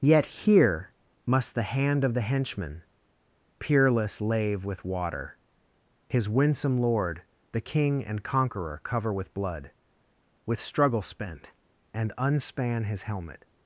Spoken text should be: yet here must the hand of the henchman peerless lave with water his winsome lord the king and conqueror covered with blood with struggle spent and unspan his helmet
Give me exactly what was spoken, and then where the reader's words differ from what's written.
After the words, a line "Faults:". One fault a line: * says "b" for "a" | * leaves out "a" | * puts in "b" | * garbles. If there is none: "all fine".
yet here must the hand of the henchman peerless lave with water his winsome lord the king and conqueror cover with blood with struggle spent and unspan his helmet
Faults:
* says "cover" for "covered"